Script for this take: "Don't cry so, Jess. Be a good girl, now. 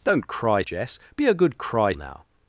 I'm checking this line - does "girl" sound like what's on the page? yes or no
no